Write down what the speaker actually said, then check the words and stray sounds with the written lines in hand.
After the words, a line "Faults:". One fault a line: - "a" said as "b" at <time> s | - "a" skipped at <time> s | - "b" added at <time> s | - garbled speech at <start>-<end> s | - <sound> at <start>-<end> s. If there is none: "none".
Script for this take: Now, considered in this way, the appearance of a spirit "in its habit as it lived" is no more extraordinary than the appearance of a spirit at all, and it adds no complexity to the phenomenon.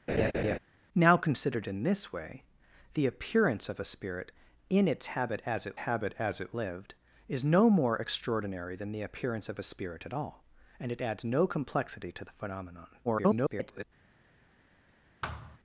Now, considered in this way, the appearance of a spirit "in its habit as it habit as it lived" is no more extraordinary than the appearance of a spirit at all, and it adds no complexity to the phenomenon. [garbled]
Faults:
- laugh at 0.1-0.6 s
- "habit as it" added at 5.8 s
- garbled speech at 13.0-13.8 s
- thud at 15.2-15.6 s